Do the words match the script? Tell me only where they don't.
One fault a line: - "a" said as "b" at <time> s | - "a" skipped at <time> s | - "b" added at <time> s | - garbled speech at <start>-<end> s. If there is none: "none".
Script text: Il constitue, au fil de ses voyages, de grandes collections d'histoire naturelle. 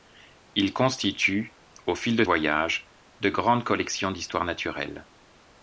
- "ses" skipped at 2.2 s